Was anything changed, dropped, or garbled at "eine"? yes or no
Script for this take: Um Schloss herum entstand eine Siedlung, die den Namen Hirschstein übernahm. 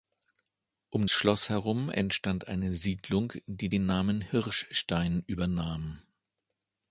no